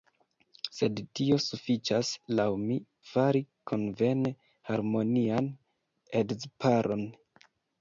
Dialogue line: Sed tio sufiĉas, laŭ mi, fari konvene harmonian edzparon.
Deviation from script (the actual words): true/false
false